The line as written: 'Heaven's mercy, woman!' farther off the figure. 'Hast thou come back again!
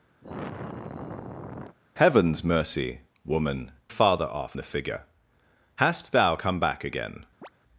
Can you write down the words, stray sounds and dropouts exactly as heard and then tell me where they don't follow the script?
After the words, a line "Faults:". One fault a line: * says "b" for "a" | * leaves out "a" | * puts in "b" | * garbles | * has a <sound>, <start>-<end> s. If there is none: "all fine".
'Heaven's mercy, woman!' farther off the figure. 'Hast thou come back again!
Faults:
* has a sigh, 0.2-1.8 s
* has a chirp, 7.4-7.5 s